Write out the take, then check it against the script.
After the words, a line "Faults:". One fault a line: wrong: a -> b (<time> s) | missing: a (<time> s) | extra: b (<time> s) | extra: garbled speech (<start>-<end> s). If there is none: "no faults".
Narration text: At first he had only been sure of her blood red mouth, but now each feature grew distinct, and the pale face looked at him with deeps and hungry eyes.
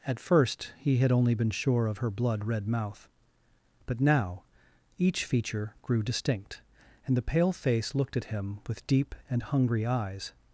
At first he had only been sure of her blood red mouth, but now each feature grew distinct, and the pale face looked at him with deep and hungry eyes.
Faults:
wrong: deeps -> deep (8.9 s)